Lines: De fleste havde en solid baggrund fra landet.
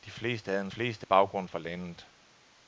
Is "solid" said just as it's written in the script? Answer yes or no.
no